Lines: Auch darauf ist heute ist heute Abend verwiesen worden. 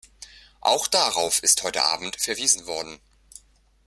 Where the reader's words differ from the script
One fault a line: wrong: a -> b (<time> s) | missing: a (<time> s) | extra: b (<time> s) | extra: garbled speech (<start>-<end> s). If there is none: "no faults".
missing: ist heute (1.8 s)